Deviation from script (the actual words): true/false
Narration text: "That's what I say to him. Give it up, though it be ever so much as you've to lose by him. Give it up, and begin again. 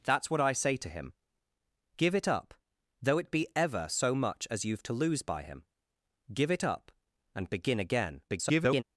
true